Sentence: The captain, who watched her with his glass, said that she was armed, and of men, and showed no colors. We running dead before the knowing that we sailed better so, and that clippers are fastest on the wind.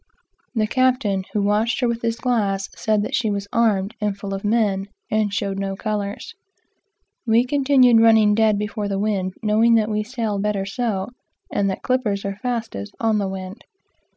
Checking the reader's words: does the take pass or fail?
fail